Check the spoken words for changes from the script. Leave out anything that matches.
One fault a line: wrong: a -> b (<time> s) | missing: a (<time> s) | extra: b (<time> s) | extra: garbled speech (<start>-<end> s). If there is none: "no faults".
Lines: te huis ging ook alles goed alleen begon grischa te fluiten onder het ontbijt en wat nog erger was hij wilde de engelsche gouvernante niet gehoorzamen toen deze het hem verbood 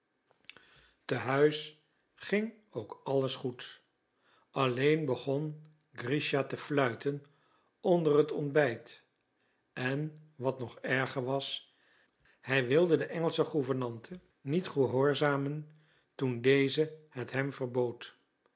no faults